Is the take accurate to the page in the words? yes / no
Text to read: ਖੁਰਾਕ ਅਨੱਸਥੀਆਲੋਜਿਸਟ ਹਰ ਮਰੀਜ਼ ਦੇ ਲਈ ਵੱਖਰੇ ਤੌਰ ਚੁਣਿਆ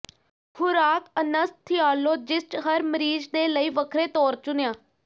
yes